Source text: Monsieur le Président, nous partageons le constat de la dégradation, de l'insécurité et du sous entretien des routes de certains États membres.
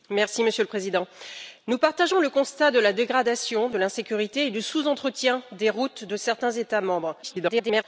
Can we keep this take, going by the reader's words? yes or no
no